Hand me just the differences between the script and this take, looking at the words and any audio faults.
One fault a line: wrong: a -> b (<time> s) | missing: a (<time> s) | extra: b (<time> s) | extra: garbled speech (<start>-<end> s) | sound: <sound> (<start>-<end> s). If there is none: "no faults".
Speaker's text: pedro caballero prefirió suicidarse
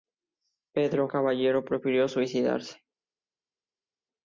no faults